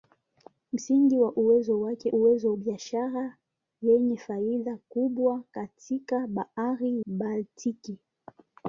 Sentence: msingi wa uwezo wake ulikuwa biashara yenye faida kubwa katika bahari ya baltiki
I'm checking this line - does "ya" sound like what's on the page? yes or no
no